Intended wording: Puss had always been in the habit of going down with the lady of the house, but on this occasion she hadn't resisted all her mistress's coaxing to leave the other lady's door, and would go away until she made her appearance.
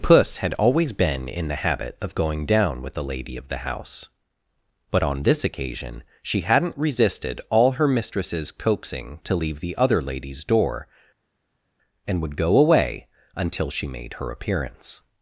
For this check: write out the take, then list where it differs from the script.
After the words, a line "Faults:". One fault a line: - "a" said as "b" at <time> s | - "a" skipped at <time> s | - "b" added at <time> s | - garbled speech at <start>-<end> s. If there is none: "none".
Puss had always been in the habit of going down with the lady of the house, but on this occasion she hadn't resisted all her mistress's coaxing to leave the other lady's door, and would go away until she made her appearance.
Faults:
none